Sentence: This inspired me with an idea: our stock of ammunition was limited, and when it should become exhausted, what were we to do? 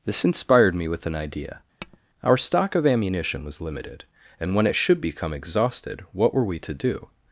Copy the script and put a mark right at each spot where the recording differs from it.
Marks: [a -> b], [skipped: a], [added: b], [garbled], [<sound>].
This inspired me with an idea: [tap] our stock of ammunition was limited, and when it should become exhausted, what were we to do?